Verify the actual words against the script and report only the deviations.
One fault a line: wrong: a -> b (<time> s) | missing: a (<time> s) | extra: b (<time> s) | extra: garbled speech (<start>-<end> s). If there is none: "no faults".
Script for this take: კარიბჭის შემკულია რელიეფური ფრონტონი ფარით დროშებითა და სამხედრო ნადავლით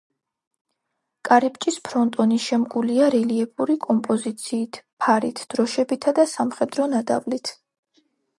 extra: ფრონტონი (1.9 s)
wrong: ფრონტონი -> კომპოზიციით (3.9 s)